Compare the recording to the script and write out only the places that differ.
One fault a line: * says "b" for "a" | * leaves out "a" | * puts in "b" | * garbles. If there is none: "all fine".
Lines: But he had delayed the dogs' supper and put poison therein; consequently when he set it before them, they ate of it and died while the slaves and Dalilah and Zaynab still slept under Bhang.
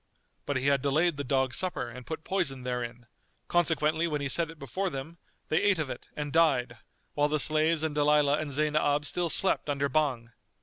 all fine